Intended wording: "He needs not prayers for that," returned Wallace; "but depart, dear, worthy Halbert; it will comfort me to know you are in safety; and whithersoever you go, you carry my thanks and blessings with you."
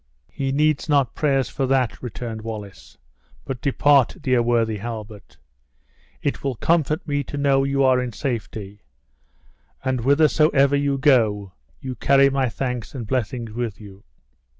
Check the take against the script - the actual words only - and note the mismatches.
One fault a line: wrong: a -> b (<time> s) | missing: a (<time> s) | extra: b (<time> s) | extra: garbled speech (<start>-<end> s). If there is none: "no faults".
no faults